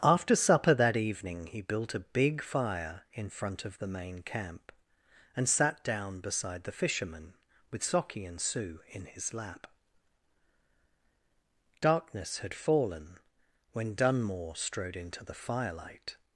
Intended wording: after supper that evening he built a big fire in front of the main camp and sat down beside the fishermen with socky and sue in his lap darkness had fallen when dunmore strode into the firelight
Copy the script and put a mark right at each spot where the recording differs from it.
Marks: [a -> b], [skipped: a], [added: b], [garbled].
after supper that evening he built a big fire in front of the main camp and sat down beside the fishermen with socky and sue in his lap darkness had fallen when dunmore strode into the firelight